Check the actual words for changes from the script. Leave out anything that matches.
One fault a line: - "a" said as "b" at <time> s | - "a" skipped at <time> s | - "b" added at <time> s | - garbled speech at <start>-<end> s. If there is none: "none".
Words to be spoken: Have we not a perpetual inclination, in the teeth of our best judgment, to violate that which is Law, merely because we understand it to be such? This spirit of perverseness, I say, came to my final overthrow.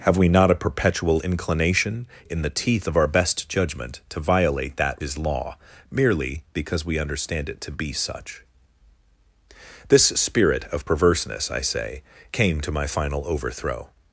- "which" skipped at 5.0 s